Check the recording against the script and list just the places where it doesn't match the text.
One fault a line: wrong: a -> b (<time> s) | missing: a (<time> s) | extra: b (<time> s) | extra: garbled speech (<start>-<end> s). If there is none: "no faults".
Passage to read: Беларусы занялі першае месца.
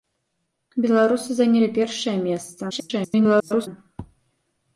extra: garbled speech (2.7-3.7 s)